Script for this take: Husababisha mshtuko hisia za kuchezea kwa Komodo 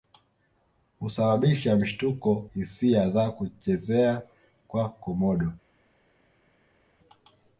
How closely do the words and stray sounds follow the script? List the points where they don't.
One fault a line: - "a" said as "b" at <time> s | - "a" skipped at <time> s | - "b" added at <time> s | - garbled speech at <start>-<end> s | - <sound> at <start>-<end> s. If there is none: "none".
none